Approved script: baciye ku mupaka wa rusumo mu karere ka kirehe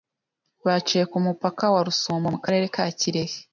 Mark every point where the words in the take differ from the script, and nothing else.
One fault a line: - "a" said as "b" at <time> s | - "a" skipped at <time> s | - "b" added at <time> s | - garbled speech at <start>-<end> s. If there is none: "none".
none